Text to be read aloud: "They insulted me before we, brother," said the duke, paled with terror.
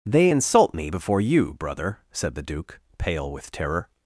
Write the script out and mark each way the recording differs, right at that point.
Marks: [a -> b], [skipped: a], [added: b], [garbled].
"They [insulted -> insult] me before [we, -> you] brother," said the duke, [paled -> pale] with terror.